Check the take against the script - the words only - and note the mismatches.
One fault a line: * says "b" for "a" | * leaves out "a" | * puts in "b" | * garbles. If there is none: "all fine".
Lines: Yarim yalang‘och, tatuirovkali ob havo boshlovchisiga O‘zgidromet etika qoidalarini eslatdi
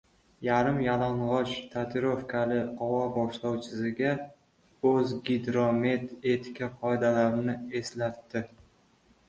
* leaves out "ob"